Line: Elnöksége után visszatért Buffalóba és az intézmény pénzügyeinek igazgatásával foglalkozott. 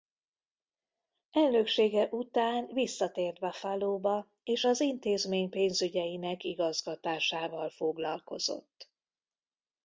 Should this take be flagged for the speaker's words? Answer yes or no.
no